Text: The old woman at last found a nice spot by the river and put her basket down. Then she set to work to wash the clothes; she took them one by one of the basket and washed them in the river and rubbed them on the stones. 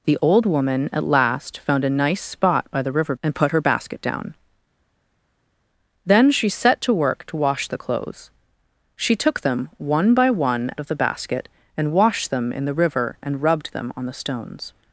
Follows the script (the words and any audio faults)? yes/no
yes